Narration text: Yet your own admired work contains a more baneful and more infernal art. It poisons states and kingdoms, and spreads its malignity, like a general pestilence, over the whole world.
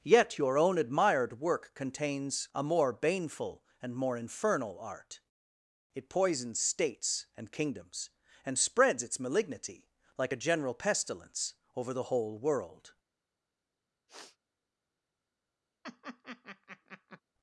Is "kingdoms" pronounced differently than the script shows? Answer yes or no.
no